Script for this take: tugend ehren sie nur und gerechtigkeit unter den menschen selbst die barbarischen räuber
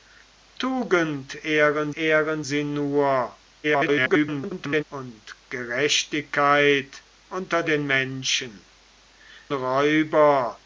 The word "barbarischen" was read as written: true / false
false